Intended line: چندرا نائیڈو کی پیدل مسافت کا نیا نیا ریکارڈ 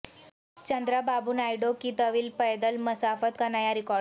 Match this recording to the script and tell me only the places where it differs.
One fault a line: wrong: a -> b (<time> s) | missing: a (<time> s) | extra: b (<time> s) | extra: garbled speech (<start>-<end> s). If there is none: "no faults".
extra: بابو (1.0 s)
extra: طویل (2.0 s)
missing: نیا (3.7 s)